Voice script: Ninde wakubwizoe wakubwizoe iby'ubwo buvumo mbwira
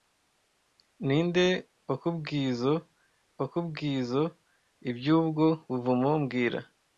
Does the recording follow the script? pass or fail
pass